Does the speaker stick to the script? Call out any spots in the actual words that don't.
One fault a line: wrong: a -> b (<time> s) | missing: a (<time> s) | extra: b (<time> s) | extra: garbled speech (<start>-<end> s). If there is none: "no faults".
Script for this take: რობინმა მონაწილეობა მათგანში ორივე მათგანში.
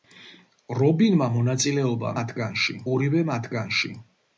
no faults